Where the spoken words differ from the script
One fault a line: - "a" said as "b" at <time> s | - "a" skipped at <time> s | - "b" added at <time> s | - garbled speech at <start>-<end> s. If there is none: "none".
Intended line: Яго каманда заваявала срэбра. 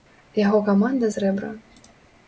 - "заваявала" skipped at 1.1 s